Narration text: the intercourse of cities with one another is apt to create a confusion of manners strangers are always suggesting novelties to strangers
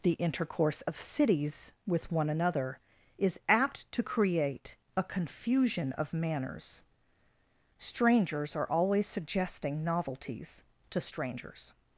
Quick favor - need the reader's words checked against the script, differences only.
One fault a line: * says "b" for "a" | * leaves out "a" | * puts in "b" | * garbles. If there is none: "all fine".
all fine